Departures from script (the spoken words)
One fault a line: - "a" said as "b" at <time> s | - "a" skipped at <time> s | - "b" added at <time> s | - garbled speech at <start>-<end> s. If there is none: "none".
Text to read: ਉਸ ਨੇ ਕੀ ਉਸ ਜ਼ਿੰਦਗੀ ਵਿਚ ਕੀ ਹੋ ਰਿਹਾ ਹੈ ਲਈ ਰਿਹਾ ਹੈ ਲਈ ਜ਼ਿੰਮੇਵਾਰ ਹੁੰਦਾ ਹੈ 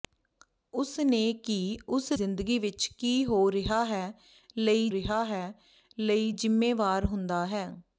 none